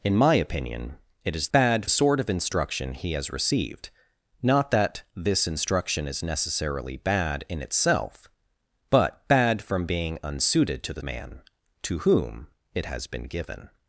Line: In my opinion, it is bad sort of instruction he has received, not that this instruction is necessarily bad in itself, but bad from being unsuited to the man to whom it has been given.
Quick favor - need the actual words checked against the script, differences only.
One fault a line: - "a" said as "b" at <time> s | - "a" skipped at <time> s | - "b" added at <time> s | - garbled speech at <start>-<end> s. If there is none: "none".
none